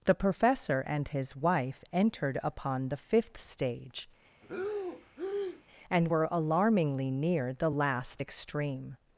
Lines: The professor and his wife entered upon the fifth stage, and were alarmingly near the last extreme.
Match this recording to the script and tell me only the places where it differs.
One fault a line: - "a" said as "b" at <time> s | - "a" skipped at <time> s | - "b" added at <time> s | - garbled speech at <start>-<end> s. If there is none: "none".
none